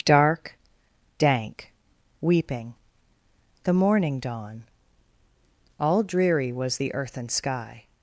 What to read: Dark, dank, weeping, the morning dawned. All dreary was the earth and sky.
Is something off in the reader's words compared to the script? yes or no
yes